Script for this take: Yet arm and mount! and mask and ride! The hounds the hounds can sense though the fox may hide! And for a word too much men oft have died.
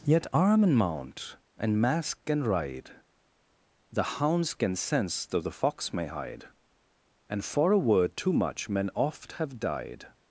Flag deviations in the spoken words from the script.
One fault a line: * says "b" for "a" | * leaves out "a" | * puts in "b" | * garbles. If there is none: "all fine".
* leaves out "the hounds"